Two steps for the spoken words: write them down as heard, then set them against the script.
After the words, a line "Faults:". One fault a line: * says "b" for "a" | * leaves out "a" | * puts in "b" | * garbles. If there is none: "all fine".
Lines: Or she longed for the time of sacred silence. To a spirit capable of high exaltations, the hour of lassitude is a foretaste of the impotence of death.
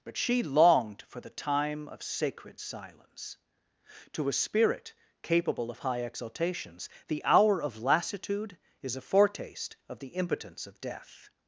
But she longed for the time of sacred silence. To a spirit capable of high exaltations, the hour of lassitude is a foretaste of the impotence of death.
Faults:
* says "But" for "Or"